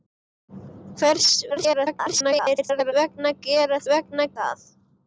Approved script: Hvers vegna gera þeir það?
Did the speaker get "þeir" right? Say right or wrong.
wrong